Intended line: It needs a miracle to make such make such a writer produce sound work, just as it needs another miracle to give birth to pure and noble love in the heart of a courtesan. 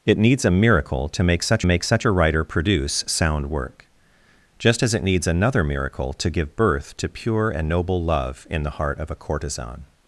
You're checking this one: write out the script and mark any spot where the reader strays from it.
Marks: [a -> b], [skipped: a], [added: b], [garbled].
It needs a miracle to make such make such a writer produce sound work, just as it needs another miracle to give birth to pure and noble love in the heart of a courtesan.